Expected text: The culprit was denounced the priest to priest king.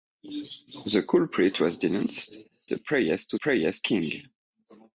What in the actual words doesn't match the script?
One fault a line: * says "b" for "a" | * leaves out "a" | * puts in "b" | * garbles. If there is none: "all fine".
all fine